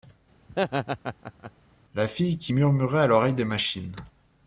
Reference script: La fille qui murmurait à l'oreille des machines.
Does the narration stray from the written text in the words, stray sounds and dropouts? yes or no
yes